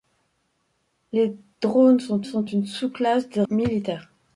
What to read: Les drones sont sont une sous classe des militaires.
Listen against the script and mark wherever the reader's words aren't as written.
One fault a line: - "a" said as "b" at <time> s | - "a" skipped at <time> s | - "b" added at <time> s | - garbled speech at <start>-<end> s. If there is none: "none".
none